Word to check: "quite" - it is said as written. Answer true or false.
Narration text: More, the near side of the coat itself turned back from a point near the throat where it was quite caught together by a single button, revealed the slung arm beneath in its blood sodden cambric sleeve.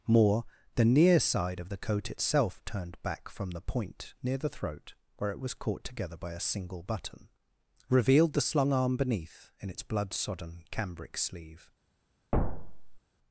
false